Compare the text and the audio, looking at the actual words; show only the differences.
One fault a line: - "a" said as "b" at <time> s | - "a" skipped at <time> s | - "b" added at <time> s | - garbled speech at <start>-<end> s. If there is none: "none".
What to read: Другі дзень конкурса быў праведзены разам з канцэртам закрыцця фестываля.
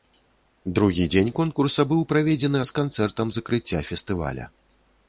- "разам" skipped at 2.6 s